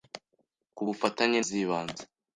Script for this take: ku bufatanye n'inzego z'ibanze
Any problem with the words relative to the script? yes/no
yes